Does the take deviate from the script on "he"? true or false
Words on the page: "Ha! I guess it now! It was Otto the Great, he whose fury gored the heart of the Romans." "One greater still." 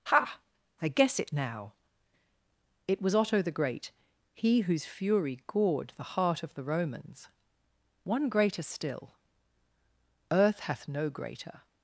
false